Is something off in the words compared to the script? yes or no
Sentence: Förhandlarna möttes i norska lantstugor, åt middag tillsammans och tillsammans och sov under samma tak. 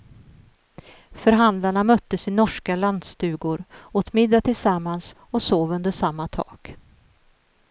yes